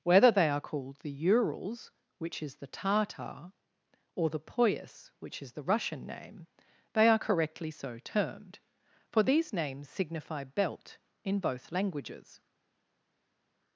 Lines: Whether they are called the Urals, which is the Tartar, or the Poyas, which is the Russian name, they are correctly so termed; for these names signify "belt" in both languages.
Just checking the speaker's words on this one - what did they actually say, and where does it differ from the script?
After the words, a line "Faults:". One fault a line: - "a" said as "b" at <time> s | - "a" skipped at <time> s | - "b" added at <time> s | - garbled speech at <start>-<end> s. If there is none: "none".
Whether they are called the Urals, which is the Tartar, or the Poyas, which is the Russian name, they are correctly so termed; for these names signify "belt" in both languages.
Faults:
none